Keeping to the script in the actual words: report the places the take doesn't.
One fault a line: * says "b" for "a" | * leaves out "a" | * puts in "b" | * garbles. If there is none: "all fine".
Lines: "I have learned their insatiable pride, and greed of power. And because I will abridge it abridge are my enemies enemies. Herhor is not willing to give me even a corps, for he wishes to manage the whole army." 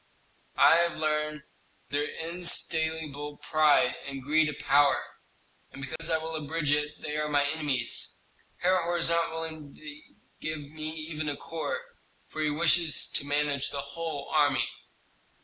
* says "they" for "abridge"
* leaves out "enemies"